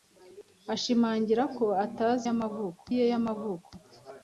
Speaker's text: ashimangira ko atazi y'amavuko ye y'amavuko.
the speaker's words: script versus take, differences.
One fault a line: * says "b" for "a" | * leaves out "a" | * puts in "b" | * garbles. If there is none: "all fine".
all fine